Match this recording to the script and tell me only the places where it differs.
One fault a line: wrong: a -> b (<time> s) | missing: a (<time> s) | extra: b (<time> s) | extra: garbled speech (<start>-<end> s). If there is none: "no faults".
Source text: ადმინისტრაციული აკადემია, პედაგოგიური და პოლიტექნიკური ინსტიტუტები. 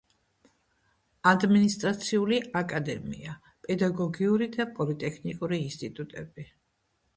no faults